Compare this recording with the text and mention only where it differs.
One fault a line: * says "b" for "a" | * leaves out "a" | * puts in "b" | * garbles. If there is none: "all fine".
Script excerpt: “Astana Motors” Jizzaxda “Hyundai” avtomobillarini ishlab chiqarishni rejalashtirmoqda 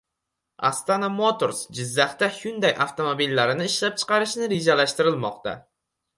all fine